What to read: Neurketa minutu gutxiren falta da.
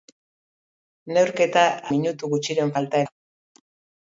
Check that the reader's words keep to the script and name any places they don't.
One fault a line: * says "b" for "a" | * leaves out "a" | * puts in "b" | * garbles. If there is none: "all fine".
all fine